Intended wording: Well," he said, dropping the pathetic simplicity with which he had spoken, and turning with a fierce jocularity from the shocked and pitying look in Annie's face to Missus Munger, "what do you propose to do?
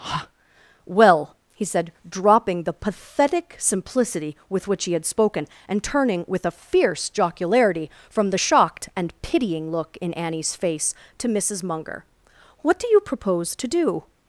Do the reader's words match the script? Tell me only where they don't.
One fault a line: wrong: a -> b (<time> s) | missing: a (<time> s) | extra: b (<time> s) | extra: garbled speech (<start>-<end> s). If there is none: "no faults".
no faults